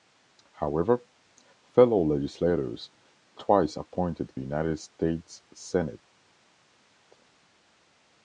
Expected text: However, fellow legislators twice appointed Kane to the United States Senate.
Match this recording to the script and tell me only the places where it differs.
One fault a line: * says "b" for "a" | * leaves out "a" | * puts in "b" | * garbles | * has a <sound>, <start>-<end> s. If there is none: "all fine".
* leaves out "Kane to the"